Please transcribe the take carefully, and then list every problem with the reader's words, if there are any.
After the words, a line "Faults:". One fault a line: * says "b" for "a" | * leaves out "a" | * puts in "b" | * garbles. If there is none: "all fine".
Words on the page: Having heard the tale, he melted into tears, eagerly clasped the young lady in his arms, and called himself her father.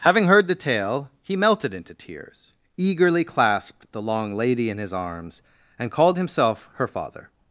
Having heard the tale, he melted into tears, eagerly clasped the long lady in his arms, and called himself her father.
Faults:
* says "long" for "young"